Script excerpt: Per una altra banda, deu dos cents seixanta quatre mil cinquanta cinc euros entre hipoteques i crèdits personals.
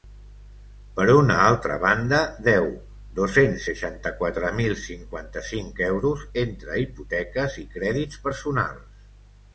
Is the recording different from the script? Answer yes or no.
no